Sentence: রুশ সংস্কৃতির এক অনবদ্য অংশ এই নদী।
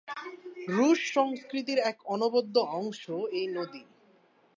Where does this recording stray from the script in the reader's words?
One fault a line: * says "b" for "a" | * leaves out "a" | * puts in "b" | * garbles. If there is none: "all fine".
all fine